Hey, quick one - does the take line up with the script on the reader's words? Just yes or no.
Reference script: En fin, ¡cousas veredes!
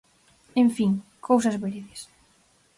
yes